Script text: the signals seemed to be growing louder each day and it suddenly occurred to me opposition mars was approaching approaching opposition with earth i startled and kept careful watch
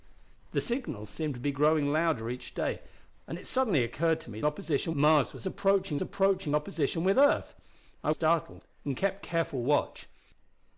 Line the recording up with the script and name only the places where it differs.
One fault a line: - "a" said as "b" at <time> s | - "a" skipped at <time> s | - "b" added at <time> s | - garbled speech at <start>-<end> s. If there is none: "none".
none